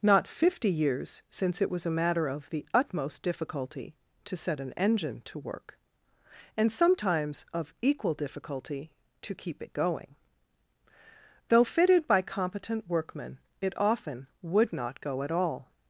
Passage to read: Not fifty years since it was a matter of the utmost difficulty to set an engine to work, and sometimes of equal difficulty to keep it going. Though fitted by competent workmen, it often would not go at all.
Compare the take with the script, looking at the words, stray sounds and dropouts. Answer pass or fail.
pass